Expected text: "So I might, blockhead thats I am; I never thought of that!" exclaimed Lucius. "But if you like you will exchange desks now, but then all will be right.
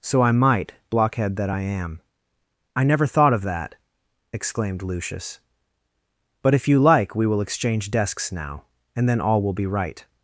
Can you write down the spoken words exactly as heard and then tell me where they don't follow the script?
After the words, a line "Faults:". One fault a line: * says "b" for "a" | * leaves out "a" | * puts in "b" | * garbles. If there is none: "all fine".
"So I might, blockhead that I am; I never thought of that!" exclaimed Lucius. "But if you like we will exchange desks now, and then all will be right.
Faults:
* says "that" for "thats"
* says "we" for "you"
* says "and" for "but"